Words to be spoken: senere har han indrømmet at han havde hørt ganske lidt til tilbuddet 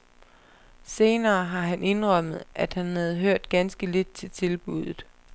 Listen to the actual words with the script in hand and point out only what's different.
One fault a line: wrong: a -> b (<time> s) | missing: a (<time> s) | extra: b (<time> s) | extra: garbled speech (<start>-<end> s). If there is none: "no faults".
no faults